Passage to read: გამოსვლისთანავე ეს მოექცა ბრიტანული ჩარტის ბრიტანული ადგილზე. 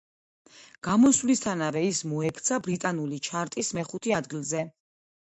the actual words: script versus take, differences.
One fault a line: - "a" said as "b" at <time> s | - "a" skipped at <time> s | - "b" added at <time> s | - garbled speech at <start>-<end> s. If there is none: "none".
- "ეს" said as "ის" at 1.9 s
- "ბრიტანული" said as "მეხუთე" at 3.8 s